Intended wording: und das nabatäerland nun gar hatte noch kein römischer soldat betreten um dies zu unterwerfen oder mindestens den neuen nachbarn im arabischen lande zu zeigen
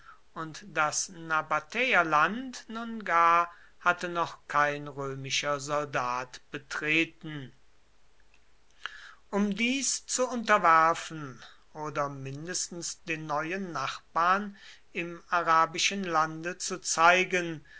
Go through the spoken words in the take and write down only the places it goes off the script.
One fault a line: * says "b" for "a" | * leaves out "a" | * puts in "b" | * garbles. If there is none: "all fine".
all fine